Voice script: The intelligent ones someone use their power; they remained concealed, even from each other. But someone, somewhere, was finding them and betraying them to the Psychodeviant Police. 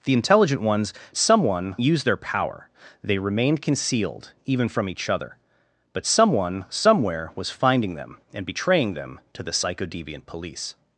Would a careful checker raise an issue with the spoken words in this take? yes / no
no